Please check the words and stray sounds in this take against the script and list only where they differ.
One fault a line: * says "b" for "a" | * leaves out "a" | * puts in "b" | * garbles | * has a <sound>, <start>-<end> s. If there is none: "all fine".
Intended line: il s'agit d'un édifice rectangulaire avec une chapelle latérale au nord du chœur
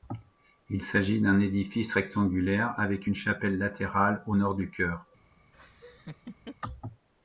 * has a laugh, 5.5-6.6 s